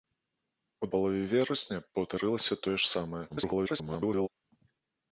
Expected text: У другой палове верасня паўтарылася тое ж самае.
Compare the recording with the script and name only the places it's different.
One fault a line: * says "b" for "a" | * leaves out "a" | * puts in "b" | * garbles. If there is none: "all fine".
* leaves out "другой"
* garbles